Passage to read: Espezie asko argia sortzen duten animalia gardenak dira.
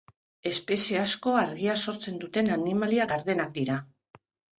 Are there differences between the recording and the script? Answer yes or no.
no